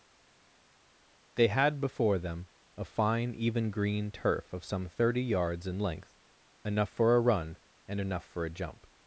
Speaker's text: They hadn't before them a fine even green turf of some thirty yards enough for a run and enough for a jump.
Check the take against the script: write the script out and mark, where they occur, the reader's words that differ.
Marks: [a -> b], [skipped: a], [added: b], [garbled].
They [hadn't -> had] before them a fine even green turf of some thirty yards [added: in length] enough for a run and enough for a jump.